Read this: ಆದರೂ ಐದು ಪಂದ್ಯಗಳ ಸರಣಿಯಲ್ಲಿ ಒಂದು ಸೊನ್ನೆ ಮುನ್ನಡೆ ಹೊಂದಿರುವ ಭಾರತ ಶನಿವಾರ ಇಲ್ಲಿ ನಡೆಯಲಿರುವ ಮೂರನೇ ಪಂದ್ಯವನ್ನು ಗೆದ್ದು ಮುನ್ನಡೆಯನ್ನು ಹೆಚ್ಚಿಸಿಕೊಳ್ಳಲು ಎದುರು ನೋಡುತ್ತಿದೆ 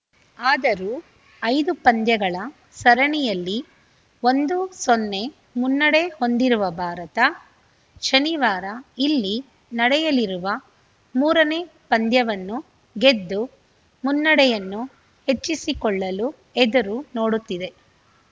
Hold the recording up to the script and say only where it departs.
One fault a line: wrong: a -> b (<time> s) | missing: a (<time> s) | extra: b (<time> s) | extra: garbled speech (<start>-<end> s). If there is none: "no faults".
no faults